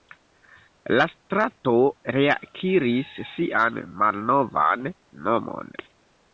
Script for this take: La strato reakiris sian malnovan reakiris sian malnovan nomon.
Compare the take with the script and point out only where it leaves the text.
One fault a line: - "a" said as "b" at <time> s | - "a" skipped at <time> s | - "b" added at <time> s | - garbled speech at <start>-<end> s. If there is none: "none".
- "reakiris sian malnovan" skipped at 4.9 s